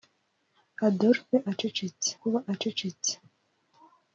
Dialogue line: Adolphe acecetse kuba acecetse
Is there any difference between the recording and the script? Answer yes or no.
no